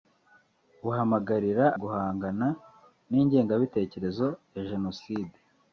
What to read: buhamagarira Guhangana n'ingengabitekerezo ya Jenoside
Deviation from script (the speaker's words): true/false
false